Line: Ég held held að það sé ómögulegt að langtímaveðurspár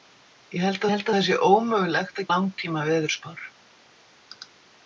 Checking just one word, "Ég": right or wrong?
right